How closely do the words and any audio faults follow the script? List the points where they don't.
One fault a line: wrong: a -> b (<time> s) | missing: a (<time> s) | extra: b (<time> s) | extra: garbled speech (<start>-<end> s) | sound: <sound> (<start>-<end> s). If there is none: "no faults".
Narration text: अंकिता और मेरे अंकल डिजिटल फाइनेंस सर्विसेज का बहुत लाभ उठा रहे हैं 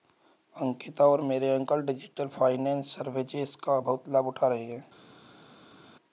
no faults